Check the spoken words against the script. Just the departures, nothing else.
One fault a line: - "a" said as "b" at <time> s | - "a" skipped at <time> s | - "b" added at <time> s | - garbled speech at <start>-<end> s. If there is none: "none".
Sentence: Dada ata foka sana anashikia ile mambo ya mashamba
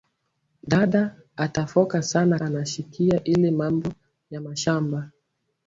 none